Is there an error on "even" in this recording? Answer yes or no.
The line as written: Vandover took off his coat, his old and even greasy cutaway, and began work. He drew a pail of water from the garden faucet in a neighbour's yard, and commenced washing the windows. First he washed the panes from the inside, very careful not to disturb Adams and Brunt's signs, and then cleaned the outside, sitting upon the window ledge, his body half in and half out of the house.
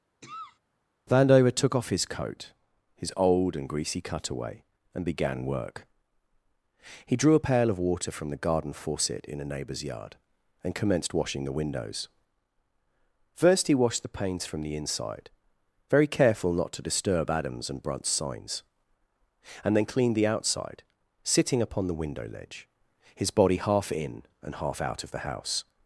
yes